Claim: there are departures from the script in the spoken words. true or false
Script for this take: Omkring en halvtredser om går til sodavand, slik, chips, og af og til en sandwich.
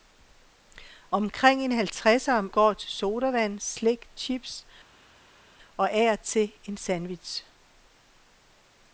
false